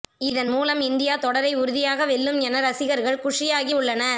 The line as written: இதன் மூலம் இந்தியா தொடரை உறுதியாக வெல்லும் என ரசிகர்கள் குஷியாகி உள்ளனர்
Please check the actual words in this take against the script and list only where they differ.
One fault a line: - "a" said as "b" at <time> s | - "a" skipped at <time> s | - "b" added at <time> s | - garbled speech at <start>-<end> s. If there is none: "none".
none